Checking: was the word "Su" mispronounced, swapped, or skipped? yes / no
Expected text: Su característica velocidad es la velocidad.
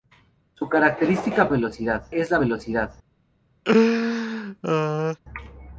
no